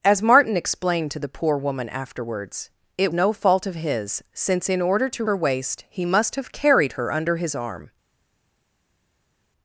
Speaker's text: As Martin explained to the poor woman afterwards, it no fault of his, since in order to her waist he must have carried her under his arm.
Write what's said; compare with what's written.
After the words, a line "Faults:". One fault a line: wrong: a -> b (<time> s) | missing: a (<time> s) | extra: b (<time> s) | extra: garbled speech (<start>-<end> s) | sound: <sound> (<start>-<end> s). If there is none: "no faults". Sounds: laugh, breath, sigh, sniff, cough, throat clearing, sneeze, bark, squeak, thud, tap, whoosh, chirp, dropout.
As Martin explained to the poor woman afterwards, it no fault of his, since in order to her waist he must have carried her under his arm.
Faults:
no faults